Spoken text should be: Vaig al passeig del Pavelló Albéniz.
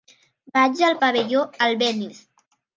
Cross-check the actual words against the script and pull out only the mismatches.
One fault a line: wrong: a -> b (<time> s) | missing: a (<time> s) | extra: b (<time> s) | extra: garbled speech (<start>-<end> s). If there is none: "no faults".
missing: passeig del (1.0 s)